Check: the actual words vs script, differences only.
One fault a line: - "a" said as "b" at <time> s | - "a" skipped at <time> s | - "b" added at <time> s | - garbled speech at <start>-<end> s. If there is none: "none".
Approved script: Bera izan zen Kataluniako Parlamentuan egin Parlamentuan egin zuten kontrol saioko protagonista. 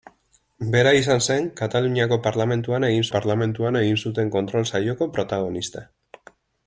none